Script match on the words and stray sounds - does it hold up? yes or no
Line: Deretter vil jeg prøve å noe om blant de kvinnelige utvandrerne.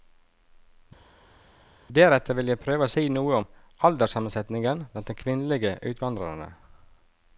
no